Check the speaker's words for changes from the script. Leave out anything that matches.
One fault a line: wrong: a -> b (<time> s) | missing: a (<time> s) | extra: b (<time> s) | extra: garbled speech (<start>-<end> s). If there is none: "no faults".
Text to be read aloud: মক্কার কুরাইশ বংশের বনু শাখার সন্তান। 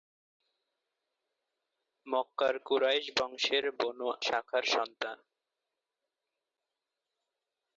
no faults